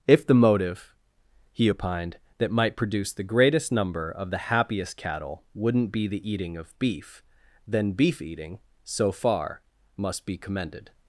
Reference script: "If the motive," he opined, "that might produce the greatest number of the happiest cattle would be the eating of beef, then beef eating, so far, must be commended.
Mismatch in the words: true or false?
true